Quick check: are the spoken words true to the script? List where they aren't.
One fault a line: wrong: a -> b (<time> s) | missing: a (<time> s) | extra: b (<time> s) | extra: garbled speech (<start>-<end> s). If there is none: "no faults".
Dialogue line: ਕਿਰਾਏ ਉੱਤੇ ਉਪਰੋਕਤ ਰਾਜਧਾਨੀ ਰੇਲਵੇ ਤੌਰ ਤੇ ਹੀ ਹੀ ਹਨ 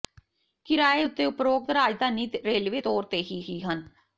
no faults